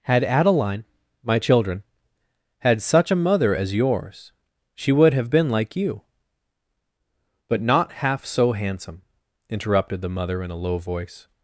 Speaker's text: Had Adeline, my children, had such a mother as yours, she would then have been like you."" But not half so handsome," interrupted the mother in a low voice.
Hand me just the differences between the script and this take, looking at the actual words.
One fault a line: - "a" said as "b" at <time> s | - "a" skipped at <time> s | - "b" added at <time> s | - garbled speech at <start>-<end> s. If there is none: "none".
- "then" skipped at 5.1 s